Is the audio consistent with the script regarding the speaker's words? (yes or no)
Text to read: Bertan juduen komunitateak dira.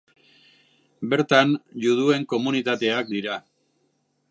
yes